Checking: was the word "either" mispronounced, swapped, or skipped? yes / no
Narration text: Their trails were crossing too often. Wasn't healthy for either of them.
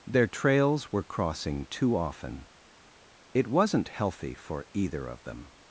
no